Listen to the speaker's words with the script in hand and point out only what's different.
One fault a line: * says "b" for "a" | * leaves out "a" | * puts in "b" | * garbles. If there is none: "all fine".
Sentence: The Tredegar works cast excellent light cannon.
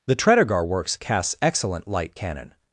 * says "casts" for "cast"